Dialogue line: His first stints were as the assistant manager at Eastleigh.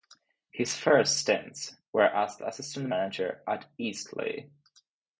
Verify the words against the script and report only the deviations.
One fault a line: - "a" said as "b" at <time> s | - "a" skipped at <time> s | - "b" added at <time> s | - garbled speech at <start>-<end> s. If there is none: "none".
none